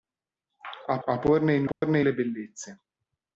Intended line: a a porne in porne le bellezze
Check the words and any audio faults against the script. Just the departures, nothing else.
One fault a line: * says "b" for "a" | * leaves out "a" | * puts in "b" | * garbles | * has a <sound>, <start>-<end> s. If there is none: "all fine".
* has a dropout, 1.7-1.8 s